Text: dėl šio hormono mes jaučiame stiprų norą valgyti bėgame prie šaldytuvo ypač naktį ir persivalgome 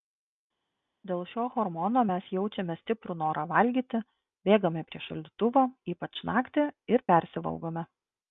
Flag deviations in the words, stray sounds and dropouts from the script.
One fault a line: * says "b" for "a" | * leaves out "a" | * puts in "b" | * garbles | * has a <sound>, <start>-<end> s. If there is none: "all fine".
all fine